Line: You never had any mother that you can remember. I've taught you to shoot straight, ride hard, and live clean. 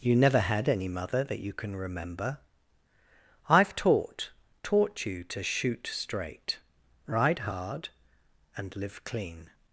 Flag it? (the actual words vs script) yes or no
yes